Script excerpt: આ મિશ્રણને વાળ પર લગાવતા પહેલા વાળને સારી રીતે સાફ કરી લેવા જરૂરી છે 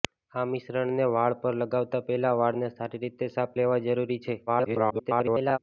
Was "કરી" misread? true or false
true